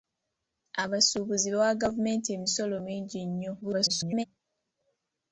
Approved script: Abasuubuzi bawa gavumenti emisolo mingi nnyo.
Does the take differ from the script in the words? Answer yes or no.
yes